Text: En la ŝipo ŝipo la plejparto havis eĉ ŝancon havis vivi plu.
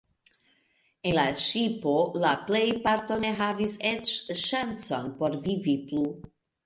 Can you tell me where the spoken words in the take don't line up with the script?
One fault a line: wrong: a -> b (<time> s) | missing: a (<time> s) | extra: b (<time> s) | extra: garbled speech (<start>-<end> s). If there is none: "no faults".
missing: ŝipo (1.9 s)
extra: ne (3.2 s)
wrong: havis -> por (5.2 s)